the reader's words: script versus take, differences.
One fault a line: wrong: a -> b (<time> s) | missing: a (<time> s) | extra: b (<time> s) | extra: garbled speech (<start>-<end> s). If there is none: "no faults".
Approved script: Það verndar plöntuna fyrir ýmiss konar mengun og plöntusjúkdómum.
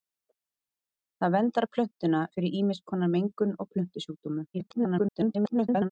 extra: garbled speech (4.5-5.9 s)